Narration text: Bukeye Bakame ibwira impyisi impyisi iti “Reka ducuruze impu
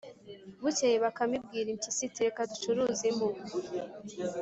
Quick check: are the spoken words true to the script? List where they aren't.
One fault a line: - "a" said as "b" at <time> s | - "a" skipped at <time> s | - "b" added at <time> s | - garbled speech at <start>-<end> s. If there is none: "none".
- "impyisi" skipped at 2.0 s